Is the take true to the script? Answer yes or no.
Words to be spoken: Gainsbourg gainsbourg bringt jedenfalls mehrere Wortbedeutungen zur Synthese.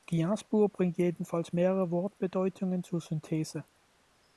no